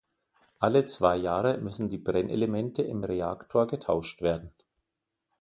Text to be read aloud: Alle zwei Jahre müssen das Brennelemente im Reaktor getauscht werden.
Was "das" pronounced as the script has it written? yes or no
no